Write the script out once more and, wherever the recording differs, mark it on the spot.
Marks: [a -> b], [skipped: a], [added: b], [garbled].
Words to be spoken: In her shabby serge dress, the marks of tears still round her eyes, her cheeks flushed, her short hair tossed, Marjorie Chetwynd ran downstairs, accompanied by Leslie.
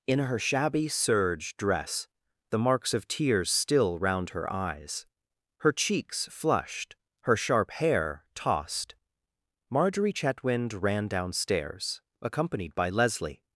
In her shabby serge dress, the marks of tears still round her eyes, her cheeks flushed, her [short -> sharp] hair tossed, Marjorie Chetwynd ran downstairs, accompanied by Leslie.